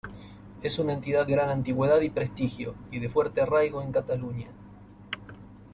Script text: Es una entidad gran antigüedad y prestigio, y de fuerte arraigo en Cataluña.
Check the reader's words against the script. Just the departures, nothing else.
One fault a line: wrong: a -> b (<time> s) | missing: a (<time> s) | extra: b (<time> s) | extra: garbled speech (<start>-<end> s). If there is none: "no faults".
no faults